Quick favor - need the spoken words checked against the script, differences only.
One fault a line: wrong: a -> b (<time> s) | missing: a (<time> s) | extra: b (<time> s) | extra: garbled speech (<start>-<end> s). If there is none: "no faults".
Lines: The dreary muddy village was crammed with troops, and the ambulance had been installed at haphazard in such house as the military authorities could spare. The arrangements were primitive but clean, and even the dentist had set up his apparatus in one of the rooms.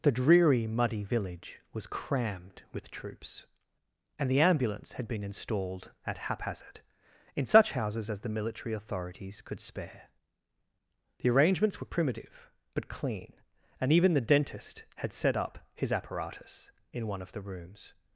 wrong: house -> houses (7.7 s)